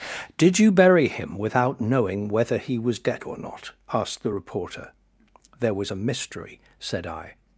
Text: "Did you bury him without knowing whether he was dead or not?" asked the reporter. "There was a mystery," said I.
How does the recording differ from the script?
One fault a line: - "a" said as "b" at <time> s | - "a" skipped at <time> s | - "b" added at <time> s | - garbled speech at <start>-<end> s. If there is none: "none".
none